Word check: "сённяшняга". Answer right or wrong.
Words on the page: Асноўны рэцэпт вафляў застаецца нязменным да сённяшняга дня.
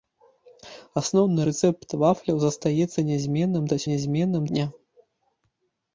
wrong